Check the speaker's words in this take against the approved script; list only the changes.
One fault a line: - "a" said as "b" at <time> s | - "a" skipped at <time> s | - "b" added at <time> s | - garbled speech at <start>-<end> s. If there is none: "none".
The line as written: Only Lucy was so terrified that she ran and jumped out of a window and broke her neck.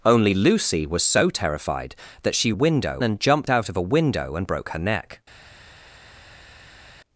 - "ran" said as "window" at 2.5 s